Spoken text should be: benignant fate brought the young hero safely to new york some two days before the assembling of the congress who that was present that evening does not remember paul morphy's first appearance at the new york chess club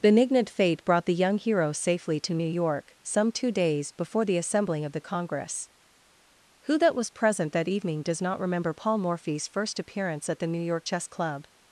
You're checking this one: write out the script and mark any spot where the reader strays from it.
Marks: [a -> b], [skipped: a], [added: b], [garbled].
benignant fate brought the young hero safely to new york some two days before the assembling of the congress who that was present that evening does not remember paul morphy's first appearance at the new york chess club